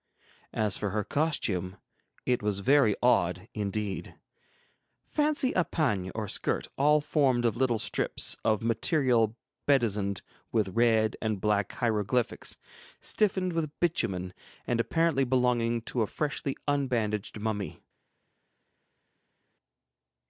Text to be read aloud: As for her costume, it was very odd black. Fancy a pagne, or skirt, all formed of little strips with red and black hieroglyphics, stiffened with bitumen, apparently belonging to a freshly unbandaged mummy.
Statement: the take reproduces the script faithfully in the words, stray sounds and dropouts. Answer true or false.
false